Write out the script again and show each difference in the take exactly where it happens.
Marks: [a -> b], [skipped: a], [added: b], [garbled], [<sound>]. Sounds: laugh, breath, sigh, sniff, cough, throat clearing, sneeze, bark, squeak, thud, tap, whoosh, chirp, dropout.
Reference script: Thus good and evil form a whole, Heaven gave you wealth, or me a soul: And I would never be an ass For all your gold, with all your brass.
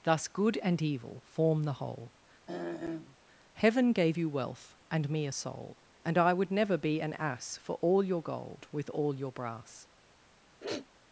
Thus good and evil form [a -> the] whole, [throat clearing] Heaven gave you wealth, [or -> and] me a soul: And I would never be an ass For all your gold, with all your brass. [sniff]